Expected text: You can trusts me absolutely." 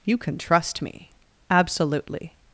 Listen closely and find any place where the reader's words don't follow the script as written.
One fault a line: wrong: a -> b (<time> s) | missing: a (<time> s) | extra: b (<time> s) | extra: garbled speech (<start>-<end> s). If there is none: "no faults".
wrong: trusts -> trust (0.4 s)